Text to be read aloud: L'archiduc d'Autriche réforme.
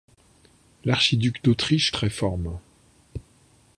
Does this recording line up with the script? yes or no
yes